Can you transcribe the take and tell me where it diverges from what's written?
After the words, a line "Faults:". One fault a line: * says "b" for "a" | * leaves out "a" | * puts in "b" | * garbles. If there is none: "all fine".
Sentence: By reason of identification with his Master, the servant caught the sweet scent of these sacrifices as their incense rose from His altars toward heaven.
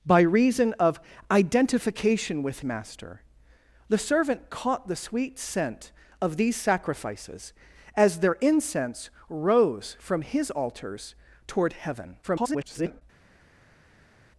By reason of identification with Master, the servant caught the sweet scent of these sacrifices as their incense rose from His altars toward heaven. [garbled]
Faults:
* leaves out "his"
* garbles